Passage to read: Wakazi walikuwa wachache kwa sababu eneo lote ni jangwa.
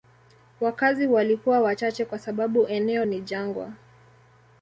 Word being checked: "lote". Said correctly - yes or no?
no